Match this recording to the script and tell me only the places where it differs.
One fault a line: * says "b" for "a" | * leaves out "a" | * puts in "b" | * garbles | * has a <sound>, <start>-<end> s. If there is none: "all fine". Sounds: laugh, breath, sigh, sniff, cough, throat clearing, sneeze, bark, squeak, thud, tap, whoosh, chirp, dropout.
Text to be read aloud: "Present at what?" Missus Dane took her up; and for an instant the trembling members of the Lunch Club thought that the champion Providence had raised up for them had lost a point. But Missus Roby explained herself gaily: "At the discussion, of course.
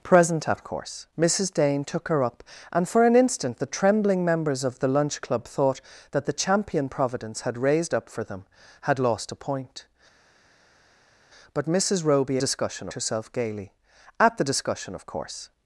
* says "course" for "what"
* says "discussion" for "explained"